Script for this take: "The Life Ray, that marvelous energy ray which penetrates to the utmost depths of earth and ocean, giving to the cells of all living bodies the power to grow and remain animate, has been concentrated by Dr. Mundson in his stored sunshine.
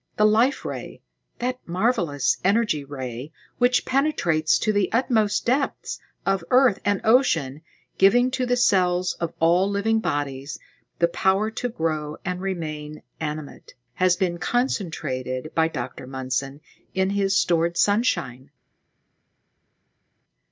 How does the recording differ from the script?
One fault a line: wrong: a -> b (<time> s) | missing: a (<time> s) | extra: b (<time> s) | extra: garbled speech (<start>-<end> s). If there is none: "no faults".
no faults